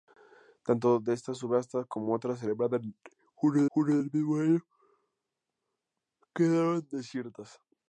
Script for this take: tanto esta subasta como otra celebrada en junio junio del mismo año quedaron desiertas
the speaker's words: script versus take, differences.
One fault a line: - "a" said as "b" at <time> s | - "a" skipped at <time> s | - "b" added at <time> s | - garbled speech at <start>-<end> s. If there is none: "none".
none